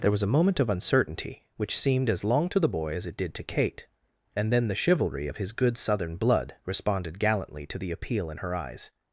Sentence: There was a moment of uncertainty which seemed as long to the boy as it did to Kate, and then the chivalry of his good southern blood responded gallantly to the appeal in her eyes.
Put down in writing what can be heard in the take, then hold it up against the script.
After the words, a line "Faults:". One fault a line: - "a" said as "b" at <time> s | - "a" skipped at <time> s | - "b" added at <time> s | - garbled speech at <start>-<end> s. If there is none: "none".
There was a moment of uncertainty which seemed as long to the boy as it did to Kate, and then the chivalry of his good southern blood responded gallantly to the appeal in her eyes.
Faults:
none